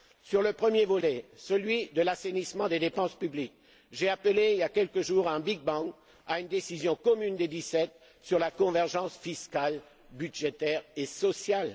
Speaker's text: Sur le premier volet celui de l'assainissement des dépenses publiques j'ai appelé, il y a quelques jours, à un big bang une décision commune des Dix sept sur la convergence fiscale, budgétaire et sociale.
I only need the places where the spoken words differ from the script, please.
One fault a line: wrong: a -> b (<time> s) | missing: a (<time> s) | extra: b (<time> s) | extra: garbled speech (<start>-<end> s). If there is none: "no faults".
extra: à (6.3 s)